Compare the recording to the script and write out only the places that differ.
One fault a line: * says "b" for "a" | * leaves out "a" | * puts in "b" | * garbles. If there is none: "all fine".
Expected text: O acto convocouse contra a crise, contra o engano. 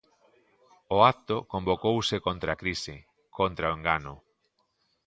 all fine